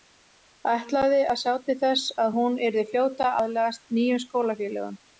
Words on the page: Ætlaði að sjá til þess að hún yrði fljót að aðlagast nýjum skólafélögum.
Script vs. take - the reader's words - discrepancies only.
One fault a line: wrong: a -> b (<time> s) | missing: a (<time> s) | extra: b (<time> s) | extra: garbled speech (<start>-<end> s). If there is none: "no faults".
no faults